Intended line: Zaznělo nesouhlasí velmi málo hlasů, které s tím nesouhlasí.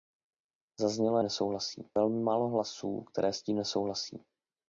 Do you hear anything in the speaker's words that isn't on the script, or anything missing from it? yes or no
no